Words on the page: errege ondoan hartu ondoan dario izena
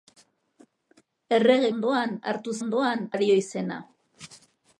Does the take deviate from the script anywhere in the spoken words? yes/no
no